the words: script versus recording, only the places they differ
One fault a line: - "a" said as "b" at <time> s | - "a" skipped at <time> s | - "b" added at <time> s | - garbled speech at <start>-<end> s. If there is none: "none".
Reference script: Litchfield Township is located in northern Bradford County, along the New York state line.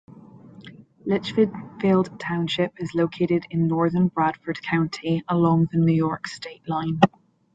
none